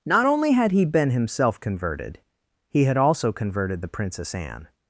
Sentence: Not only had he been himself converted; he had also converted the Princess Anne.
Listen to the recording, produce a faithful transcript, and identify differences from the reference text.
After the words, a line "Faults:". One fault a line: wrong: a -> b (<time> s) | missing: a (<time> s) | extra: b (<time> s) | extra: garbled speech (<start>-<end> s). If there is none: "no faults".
Not only had he been himself converted; he had also converted the Princess Anne.
Faults:
no faults